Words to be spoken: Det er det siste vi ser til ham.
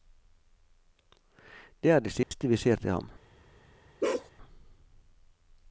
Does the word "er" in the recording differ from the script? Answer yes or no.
no